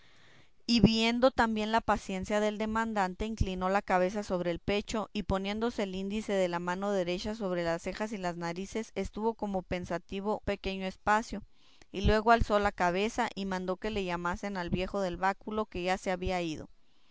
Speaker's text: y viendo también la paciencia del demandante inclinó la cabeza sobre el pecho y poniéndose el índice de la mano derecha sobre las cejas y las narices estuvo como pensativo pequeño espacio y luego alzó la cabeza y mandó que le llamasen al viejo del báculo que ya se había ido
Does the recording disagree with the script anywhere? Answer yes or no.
no